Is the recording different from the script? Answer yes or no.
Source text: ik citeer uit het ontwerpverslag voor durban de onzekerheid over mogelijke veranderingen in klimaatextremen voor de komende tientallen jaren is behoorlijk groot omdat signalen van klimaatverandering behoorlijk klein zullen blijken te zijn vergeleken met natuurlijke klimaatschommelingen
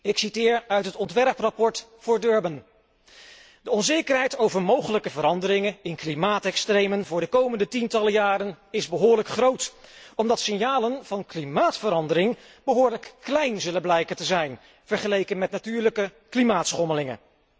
no